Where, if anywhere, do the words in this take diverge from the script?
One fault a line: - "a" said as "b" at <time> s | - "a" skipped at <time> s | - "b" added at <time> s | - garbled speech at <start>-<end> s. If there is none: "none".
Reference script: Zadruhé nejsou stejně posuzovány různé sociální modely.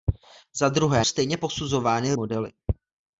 - "nejsou" skipped at 1.1 s
- "různé sociální" skipped at 2.1 s